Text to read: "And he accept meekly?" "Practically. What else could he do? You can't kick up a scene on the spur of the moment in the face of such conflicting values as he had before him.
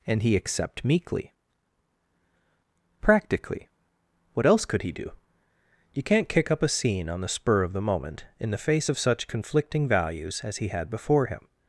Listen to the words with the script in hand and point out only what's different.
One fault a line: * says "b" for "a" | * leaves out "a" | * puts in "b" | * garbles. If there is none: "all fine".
all fine